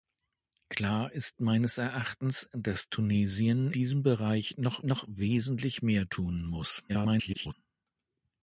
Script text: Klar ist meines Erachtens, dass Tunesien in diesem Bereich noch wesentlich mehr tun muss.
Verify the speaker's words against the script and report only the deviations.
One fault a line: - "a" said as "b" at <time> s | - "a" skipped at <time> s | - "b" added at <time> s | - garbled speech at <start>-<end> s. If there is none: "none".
- "in" skipped at 3.7 s
- "noch" added at 4.8 s
- garbled speech at 6.9-7.5 s